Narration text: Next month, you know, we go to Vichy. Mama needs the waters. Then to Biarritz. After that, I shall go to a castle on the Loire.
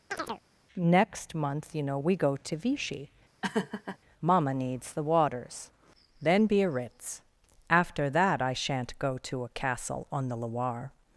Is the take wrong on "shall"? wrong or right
wrong